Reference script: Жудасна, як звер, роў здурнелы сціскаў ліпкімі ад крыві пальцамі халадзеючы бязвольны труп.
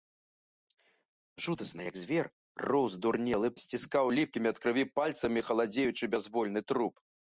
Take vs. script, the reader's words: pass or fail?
pass